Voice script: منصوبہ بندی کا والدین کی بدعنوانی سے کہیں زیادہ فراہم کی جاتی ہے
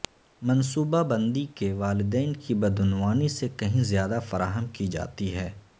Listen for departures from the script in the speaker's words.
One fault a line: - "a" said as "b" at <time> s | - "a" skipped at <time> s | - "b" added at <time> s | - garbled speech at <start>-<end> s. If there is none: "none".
- "کا" said as "کے" at 1.6 s